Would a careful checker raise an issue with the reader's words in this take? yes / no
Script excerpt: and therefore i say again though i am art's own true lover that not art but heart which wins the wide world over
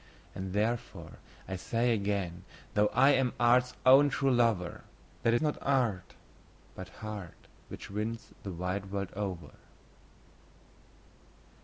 no